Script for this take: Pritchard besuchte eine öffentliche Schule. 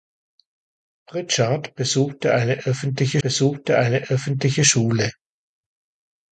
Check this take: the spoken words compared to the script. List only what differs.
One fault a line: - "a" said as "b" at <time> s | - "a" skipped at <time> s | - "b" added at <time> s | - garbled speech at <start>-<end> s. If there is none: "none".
- "besuchte eine öffentliche" added at 3.2 s